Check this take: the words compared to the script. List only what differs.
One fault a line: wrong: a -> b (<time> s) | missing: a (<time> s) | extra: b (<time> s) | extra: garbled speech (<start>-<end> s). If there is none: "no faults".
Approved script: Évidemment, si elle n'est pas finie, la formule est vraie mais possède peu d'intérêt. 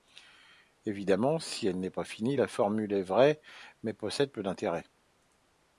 no faults